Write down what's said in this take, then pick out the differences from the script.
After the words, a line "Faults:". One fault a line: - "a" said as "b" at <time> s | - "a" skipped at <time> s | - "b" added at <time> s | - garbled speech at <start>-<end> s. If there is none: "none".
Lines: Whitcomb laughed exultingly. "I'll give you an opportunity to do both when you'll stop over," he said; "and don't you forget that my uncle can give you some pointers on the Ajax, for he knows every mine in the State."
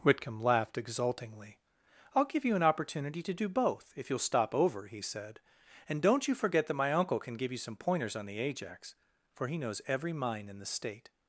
Whitcomb laughed exultingly. "I'll give you an opportunity to do both if you'll stop over," he said; "and don't you forget that my uncle can give you some pointers on the Ajax, for he knows every mine in the State."
Faults:
- "when" said as "if" at 4.0 s